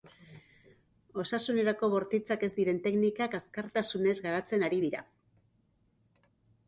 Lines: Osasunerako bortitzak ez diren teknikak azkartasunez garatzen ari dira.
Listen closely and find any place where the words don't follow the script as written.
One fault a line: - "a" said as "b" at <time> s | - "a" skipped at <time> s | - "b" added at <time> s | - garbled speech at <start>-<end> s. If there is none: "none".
none